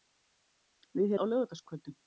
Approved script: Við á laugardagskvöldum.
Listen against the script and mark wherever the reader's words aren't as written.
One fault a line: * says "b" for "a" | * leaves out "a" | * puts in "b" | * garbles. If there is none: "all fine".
all fine